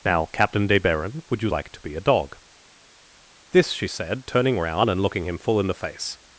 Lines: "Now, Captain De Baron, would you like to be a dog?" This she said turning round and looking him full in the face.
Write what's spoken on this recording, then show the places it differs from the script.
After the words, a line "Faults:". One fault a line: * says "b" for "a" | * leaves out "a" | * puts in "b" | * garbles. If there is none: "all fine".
"Now, Captain De Baron, would you like to be a dog?" This she said turning round and looking him full in the face.
Faults:
all fine